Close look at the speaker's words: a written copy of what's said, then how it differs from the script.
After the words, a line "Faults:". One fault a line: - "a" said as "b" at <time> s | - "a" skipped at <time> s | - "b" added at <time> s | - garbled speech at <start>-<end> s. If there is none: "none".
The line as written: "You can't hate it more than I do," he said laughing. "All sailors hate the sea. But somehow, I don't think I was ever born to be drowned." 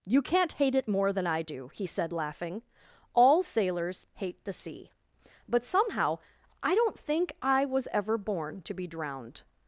"You can't hate it more than I do," he said laughing. "All sailors hate the sea. But somehow, I don't think I was ever born to be drowned."
Faults:
none